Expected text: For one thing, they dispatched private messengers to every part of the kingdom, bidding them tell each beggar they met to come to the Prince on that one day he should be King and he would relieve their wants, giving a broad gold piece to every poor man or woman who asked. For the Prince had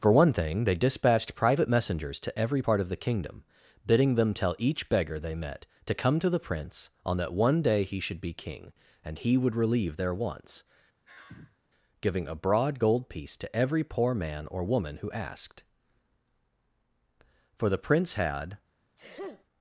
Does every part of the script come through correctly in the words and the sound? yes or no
no